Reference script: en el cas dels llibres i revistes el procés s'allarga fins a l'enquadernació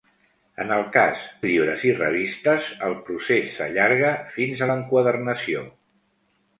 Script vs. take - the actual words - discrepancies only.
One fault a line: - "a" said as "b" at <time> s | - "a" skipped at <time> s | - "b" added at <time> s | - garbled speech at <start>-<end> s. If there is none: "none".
- "dels" skipped at 1.2 s